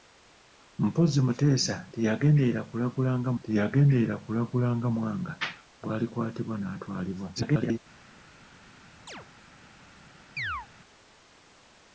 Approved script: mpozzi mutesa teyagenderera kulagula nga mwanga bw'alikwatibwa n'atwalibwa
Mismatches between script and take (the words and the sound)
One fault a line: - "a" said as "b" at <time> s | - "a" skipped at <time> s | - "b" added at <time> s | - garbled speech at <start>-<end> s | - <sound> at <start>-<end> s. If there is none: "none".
- "teyagenderera kulagula nga" added at 3.4 s
- garbled speech at 7.4-7.8 s
- chirp at 9.1-9.3 s
- chirp at 10.4-10.7 s